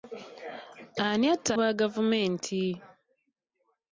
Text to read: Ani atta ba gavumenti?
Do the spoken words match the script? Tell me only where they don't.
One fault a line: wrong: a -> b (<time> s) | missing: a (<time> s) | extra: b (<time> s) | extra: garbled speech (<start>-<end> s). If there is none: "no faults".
no faults